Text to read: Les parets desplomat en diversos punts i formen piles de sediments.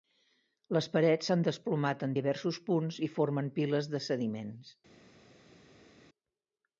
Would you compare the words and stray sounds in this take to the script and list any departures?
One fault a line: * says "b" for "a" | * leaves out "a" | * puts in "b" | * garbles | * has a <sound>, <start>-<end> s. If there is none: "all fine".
* puts in "s'han"